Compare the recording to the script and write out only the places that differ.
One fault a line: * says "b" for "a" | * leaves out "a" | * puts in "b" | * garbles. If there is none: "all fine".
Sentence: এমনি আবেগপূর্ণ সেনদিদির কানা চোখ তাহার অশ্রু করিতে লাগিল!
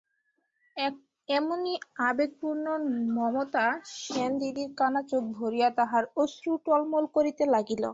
* puts in "মমতা"
* puts in "ভরিয়া"
* puts in "টলমল"